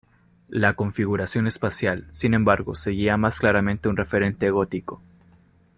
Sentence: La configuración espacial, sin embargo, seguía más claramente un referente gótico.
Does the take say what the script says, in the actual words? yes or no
yes